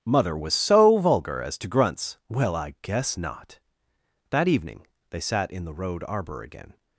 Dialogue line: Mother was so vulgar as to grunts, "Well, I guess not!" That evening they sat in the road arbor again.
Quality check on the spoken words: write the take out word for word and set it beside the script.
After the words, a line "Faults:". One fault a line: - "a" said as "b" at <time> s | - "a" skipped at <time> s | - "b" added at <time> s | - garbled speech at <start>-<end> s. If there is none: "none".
Mother was so vulgar as to grunts, "Well, I guess not!" That evening they sat in the road arbor again.
Faults:
none